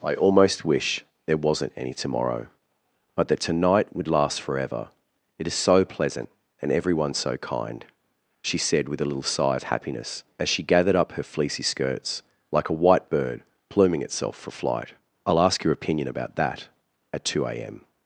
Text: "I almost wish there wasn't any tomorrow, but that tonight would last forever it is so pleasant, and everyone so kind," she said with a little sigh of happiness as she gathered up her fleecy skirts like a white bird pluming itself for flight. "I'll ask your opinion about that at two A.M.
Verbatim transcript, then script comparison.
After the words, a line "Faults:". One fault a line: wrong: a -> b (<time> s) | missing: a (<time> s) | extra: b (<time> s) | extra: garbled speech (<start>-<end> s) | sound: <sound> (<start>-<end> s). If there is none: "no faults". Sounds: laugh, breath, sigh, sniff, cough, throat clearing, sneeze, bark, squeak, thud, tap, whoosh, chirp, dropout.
"I almost wish there wasn't any tomorrow, but that tonight would last forever it is so pleasant, and everyone so kind," she said with a little sigh of happiness as she gathered up her fleecy skirts like a white bird pluming itself for flight. "I'll ask your opinion about that at two A.M.
Faults:
no faults